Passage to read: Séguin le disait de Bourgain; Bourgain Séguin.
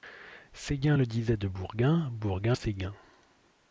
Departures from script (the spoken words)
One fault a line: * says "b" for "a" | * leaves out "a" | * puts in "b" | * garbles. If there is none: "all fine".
all fine